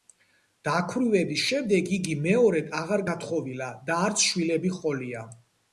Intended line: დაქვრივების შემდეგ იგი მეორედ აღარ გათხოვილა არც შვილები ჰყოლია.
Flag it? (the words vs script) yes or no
yes